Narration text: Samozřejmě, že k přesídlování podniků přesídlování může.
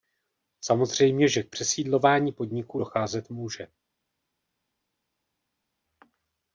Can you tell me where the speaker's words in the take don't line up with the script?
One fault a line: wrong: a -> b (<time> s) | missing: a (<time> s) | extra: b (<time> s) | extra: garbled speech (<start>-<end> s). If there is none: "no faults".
wrong: přesídlování -> docházet (2.7 s)